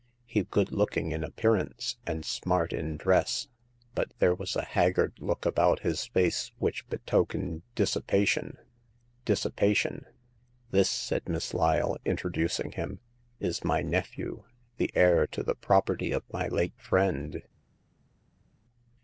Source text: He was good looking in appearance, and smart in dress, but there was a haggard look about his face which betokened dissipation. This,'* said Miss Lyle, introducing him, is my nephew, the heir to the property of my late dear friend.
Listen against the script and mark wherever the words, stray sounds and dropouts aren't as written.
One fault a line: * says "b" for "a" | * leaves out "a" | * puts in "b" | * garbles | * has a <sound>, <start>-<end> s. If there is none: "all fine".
* leaves out "was"
* puts in "dissipation"
* leaves out "dear"